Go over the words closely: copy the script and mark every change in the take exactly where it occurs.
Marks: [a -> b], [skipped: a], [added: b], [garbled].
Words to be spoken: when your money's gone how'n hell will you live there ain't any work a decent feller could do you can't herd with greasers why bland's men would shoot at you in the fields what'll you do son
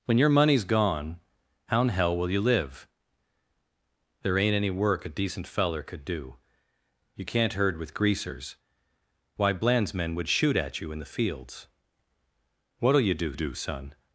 when your money's gone how'n hell will you live there ain't any work a decent feller could do you can't herd with greasers why bland's men would shoot at you in the fields what'll you do [added: do] son